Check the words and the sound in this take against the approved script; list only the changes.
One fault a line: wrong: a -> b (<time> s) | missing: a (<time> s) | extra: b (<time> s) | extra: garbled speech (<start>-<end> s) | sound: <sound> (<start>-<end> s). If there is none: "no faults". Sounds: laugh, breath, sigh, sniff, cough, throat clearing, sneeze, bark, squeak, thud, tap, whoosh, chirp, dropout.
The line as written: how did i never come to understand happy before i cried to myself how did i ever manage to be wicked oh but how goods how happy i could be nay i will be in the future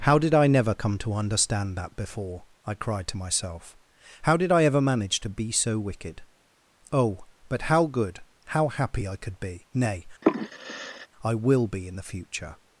wrong: happy -> that (1.8 s)
extra: so (5.5 s)
wrong: goods -> good (7.9 s)
sound: sigh (10.2-11.1 s)